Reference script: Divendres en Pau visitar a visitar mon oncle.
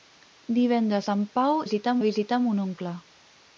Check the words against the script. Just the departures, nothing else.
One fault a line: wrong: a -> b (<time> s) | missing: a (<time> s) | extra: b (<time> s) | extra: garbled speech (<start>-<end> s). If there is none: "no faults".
no faults